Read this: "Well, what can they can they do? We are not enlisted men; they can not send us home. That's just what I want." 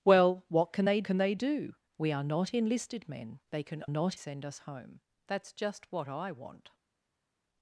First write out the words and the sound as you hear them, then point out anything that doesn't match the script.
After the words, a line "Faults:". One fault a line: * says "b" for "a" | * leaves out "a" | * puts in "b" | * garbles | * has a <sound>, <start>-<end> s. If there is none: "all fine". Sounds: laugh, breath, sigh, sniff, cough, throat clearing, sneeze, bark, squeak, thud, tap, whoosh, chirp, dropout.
"Well, what can they can they do? We are not enlisted men; they can not send us home. That's just what I want."
Faults:
all fine